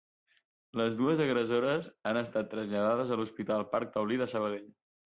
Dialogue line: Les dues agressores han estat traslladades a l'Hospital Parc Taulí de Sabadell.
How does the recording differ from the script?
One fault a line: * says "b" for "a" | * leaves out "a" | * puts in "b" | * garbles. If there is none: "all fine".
all fine